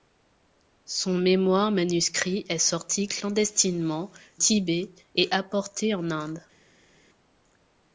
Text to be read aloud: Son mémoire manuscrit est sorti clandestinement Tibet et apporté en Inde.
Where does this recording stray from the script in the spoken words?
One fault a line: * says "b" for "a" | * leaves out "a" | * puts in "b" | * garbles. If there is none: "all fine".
all fine